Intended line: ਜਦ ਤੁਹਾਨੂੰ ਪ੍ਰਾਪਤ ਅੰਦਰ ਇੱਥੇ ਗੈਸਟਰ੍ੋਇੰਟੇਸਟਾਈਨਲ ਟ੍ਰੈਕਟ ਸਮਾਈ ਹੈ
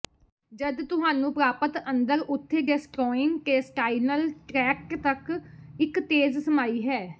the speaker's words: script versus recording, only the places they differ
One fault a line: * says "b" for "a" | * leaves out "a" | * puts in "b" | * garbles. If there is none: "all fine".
* says "ਉੱਥੇ" for "ਇੱਥੇ"
* puts in "ਤੱਕ ਇੱਕ ਤੇਜ਼"